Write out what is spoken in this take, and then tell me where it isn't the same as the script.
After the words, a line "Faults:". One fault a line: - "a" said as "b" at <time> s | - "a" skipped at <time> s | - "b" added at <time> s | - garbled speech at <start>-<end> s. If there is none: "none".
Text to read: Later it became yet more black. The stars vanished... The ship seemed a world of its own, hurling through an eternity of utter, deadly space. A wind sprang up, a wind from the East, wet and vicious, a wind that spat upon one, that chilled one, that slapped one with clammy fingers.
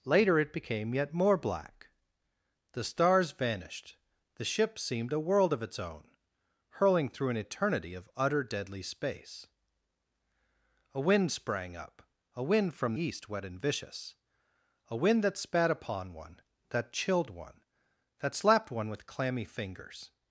Later it became yet more black. The stars vanished... The ship seemed a world of its own, hurling through an eternity of utter, deadly space. A wind sprang up, a wind from East, wet and vicious, a wind that spat upon one, that chilled one, that slapped one with clammy fingers.
Faults:
- "the" skipped at 12.9 s